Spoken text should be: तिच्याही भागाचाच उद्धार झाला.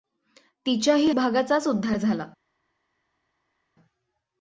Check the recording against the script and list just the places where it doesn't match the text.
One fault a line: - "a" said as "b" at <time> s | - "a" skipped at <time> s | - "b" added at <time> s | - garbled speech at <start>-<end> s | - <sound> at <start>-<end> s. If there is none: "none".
none